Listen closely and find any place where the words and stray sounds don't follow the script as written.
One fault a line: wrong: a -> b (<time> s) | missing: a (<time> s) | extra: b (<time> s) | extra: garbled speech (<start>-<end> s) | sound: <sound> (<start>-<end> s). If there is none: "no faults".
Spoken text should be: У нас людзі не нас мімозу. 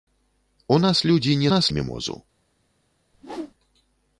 sound: whoosh (3.1-3.5 s)